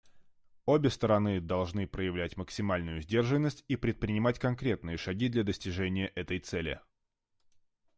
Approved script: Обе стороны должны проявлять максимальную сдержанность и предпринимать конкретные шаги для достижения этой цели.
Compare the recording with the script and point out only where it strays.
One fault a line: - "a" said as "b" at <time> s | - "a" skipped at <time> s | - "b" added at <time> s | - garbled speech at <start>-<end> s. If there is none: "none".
none